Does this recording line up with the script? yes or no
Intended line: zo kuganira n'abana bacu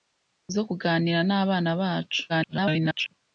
no